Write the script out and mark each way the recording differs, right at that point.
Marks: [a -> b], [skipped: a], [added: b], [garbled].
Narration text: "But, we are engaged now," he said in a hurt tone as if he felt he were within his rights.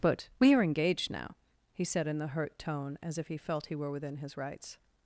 "But, we are engaged now," he said in [a -> the] hurt tone as if he felt he were within his rights.